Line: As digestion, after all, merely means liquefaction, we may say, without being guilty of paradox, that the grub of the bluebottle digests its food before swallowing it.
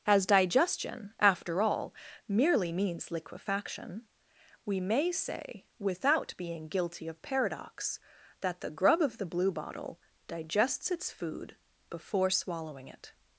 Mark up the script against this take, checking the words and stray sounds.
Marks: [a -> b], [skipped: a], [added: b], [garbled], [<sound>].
As digestion, after all, merely means liquefaction, we may say, without being guilty of paradox, that the grub of the bluebottle digests its food before swallowing it.